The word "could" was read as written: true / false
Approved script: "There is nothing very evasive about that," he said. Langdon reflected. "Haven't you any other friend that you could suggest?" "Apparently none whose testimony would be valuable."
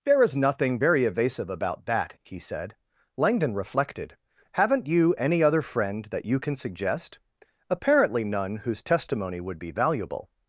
false